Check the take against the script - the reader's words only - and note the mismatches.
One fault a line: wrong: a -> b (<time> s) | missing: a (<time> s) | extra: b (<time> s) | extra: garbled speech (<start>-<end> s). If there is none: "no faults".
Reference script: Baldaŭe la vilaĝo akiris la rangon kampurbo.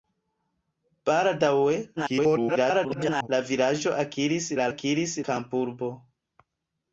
extra: garbled speech (2.0-3.3 s)
wrong: rangon -> akiris (4.7 s)